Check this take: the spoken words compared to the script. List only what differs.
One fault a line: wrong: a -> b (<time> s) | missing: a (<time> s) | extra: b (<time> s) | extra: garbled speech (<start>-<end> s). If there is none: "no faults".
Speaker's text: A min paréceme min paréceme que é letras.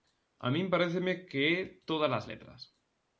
missing: min paréceme (1.1 s)
extra: tódalas (1.9 s)